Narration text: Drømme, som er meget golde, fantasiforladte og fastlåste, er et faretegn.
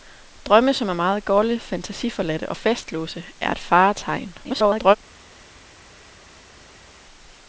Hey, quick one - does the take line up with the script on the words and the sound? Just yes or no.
no